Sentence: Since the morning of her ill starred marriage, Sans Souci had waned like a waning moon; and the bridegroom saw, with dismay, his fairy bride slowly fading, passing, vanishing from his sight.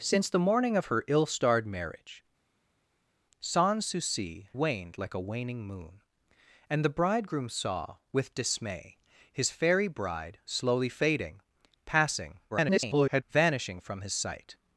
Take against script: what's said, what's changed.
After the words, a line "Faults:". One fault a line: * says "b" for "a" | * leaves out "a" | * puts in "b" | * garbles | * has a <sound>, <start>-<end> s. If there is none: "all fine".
Since the morning of her ill starred marriage, Sans Souci waned like a waning moon; and the bridegroom saw, with dismay, his fairy bride slowly fading, passing, [garbled] vanishing from his sight.
Faults:
* leaves out "had"
* garbles